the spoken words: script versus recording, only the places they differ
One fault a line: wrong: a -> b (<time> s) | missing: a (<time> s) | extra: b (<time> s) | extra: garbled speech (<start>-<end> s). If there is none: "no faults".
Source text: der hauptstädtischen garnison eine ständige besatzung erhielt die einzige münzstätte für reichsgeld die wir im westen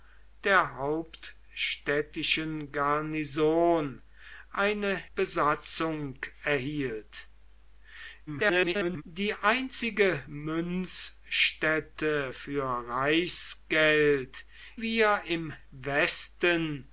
missing: ständige (5.0 s)
extra: garbled speech (8.3-9.0 s)
missing: die (14.5 s)